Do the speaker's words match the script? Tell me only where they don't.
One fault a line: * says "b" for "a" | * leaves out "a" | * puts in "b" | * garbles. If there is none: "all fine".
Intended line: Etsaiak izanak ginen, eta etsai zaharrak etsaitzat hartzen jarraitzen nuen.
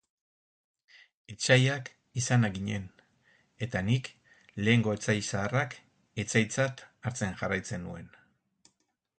* puts in "nik lehengo"